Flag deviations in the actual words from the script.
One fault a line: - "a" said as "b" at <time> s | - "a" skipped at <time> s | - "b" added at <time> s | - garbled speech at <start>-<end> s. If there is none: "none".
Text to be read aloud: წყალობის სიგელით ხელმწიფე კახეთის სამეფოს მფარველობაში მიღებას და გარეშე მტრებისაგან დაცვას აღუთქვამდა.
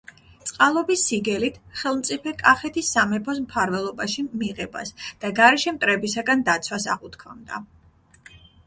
none